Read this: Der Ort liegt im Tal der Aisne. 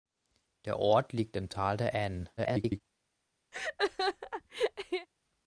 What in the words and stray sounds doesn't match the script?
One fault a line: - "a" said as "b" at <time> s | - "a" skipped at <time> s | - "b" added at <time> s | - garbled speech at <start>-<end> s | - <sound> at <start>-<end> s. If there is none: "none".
- garbled speech at 2.4-2.8 s
- laugh at 3.5-5.1 s